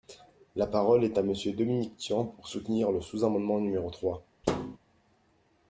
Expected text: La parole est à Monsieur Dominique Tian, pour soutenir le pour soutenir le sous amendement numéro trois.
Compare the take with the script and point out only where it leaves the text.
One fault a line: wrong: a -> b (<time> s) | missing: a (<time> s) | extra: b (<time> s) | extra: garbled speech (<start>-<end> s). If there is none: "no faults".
missing: pour soutenir le (3.0 s)